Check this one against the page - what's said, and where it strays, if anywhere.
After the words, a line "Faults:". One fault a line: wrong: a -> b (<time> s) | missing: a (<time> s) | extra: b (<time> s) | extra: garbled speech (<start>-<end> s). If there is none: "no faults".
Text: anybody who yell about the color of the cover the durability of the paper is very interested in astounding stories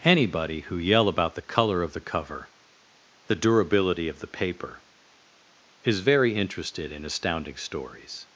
anybody who yell about the color of the cover the durability of the paper is very interested in astounding stories
Faults:
no faults